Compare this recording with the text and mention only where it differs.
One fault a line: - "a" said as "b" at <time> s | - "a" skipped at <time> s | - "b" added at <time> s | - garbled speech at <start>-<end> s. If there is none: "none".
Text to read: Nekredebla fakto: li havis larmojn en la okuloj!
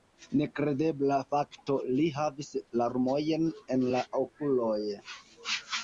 none